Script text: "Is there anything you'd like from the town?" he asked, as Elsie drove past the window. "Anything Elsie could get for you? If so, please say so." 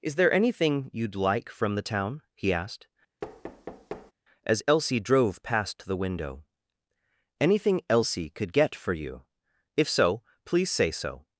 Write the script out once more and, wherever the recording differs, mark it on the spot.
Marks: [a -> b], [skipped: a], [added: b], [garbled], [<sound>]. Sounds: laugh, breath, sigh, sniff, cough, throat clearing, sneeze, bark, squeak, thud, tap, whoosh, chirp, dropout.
"Is there anything you'd like from the town?" he asked, [thud] as Elsie drove past the window. "Anything Elsie could get for you? If so, please say so."